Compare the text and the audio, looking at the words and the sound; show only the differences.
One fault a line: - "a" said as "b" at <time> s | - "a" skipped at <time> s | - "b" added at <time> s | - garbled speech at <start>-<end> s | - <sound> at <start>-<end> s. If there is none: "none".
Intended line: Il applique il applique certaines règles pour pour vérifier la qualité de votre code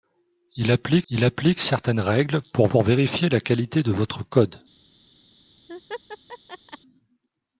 - laugh at 5.7-6.8 s